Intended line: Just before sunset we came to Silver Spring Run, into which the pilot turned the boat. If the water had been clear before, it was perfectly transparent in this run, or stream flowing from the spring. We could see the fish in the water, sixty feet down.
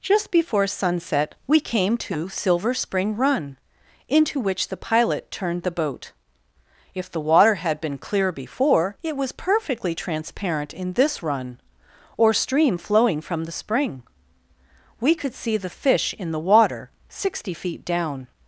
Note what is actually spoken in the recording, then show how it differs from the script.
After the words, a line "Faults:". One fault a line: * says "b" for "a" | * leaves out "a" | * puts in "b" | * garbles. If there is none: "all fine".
Just before sunset we came to Silver Spring Run, into which the pilot turned the boat. If the water had been clear before, it was perfectly transparent in this run, or stream flowing from the spring. We could see the fish in the water, sixty feet down.
Faults:
all fine